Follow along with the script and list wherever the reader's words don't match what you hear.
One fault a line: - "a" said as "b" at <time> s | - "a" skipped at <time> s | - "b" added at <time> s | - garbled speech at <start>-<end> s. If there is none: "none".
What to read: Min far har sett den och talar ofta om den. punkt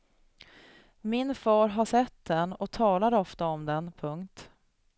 none